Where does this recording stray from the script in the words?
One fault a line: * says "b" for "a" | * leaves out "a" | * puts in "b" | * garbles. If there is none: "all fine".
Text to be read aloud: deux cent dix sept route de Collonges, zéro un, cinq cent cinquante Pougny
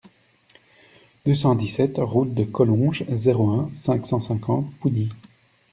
all fine